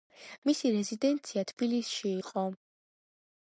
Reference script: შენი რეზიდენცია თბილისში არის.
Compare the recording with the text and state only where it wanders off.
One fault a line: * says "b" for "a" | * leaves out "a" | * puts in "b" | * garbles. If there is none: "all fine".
* says "მისი" for "შენი"
* says "იყო" for "არის"